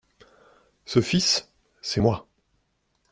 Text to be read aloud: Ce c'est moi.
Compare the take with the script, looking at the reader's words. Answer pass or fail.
fail